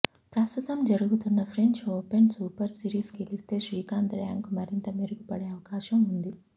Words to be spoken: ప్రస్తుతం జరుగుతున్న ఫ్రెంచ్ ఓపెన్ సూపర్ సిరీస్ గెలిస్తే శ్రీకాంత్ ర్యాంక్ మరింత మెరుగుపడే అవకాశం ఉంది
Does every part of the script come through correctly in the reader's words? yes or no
yes